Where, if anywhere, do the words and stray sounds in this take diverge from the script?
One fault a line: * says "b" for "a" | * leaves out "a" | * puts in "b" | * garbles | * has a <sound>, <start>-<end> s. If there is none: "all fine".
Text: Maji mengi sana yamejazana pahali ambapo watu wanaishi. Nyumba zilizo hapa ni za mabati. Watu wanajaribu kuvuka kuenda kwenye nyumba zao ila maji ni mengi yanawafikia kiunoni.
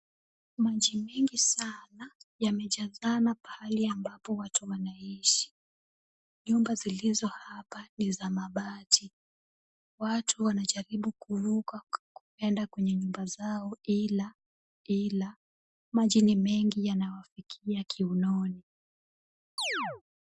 * puts in "ila"
* has a chirp, 19.6-20.0 s